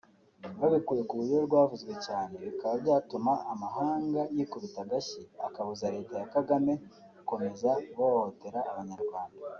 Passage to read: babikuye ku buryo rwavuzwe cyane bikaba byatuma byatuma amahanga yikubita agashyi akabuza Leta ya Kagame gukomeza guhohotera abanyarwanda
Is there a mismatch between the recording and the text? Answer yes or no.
yes